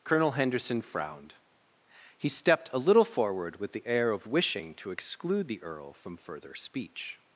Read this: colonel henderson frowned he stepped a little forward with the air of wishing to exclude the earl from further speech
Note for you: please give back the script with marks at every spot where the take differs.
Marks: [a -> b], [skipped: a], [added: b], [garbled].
colonel henderson frowned he stepped a little forward with the air of wishing to exclude the earl from further speech